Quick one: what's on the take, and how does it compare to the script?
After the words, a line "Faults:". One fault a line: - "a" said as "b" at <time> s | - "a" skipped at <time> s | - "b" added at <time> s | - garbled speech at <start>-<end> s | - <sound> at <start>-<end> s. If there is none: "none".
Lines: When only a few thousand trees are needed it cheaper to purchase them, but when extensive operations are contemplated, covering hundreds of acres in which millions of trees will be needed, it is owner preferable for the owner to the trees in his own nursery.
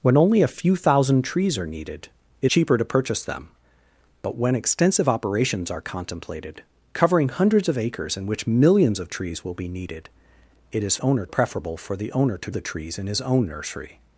When only a few thousand trees are needed it cheaper to purchase them, but when extensive operations are contemplated, covering hundreds of acres in which millions of trees will be needed, it is owner preferable for the owner to the trees in his own nursery.
Faults:
none